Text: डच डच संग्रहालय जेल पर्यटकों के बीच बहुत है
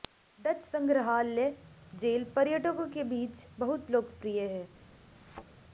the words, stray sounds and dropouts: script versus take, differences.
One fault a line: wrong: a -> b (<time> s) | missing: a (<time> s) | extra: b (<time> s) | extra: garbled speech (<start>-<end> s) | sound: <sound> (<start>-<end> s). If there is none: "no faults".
missing: डच (0.6 s)
extra: लोकप्रिय (3.9 s)
sound: thud (5.1-5.4 s)